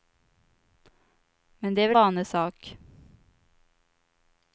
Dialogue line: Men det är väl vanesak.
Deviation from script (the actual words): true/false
false